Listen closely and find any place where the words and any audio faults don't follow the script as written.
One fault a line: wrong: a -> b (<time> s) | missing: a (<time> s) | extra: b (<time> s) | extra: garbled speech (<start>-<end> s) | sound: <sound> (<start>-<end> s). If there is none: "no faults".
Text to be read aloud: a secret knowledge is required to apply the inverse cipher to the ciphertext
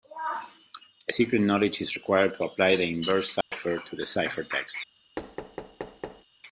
sound: dropout (3.4-3.5 s)
sound: thud (5.2-6.2 s)